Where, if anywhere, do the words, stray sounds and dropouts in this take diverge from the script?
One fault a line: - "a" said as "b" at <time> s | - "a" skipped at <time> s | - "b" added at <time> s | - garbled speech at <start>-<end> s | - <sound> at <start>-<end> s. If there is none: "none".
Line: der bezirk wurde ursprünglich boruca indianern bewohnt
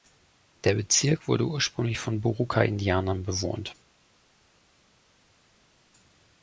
- "von" added at 2.0 s